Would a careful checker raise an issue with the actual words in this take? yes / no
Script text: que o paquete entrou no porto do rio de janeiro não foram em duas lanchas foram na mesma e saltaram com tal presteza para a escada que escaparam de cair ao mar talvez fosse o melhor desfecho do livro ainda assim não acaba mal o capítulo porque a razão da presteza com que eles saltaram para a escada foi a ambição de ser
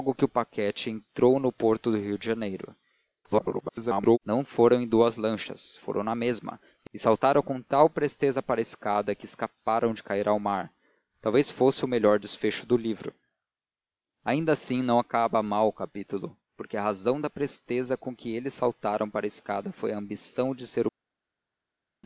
yes